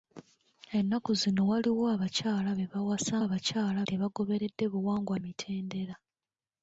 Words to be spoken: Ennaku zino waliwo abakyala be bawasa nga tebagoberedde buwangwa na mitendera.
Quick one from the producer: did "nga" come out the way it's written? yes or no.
no